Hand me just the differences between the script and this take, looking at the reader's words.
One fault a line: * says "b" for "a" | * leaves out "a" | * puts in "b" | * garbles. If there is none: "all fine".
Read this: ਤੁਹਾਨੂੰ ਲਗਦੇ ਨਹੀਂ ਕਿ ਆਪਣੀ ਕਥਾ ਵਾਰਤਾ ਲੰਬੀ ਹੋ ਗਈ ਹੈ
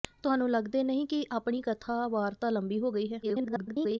* garbles